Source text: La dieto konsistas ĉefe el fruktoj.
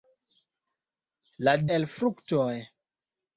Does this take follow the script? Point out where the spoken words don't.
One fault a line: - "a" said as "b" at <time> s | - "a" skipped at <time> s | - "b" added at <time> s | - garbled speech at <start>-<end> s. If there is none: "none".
- "dieto konsistas ĉefe" skipped at 1.5 s